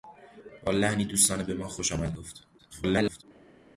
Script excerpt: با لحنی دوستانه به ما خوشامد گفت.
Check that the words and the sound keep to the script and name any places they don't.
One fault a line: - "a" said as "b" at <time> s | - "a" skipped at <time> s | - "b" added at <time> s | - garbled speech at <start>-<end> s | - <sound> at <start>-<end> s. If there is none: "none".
- garbled speech at 2.6-3.2 s